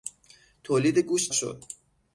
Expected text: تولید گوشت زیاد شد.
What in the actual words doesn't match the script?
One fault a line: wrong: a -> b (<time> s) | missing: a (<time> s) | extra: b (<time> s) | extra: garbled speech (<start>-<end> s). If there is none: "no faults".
missing: زیاد (1.3 s)